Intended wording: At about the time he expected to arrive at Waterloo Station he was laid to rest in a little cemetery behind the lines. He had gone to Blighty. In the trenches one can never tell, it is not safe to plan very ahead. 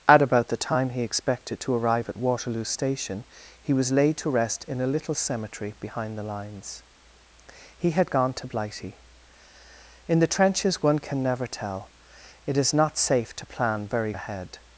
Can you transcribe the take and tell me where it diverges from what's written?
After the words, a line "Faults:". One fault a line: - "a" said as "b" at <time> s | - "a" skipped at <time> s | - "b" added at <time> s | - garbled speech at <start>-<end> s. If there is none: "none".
At about the time he expected to arrive at Waterloo Station he was laid to rest in a little cemetery behind the lines. He had gone to Blighty. In the trenches one can never tell, it is not safe to plan very ahead.
Faults:
none